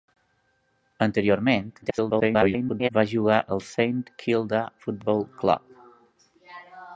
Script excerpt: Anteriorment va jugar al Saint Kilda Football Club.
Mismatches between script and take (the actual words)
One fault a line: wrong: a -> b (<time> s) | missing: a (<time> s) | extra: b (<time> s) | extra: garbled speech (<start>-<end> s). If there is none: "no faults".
extra: garbled speech (1.8-2.9 s)